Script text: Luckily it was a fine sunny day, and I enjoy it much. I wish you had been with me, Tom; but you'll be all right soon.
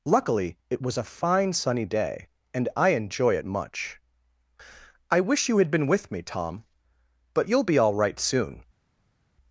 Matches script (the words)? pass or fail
pass